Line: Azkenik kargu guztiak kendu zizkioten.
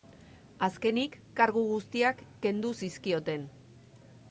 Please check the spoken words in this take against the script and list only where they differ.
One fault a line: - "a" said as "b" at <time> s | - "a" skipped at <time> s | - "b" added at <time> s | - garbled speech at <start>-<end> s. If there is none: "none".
none